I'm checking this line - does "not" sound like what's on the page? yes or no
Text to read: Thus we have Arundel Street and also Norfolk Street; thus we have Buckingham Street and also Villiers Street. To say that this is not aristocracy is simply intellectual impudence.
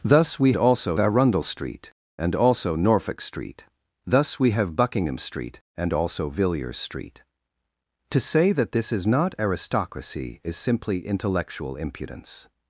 yes